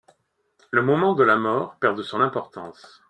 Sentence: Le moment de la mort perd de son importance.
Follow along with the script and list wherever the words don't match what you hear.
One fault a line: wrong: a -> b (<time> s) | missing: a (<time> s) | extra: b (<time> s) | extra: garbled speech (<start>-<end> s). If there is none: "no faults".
no faults